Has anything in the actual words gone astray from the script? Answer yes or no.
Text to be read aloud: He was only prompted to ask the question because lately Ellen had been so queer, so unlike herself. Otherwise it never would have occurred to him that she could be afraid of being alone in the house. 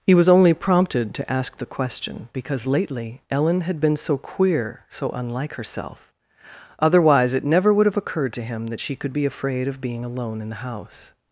no